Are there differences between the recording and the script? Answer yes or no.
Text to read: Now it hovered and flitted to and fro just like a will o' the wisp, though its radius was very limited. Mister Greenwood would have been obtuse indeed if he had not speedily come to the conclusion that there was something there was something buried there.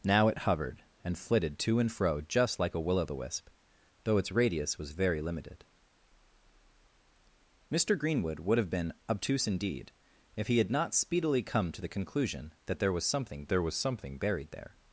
no